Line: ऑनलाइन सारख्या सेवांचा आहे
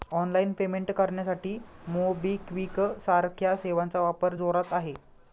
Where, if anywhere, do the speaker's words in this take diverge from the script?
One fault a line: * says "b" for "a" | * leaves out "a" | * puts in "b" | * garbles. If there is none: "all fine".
* puts in "पेमेंट करण्यासाठी मोबिक्विक"
* puts in "वापर जोरात"